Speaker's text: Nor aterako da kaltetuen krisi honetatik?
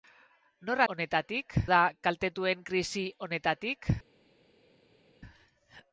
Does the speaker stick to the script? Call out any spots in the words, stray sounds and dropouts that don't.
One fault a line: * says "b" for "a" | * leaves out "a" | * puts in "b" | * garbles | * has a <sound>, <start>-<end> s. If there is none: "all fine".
* says "honetatik" for "aterako"